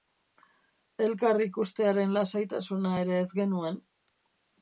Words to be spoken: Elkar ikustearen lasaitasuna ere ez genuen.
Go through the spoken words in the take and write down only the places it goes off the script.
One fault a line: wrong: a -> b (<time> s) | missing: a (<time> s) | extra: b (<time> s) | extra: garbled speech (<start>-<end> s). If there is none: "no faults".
no faults